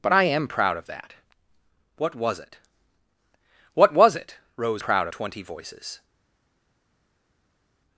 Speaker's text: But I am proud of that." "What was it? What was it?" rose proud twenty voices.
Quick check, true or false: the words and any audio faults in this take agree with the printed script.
true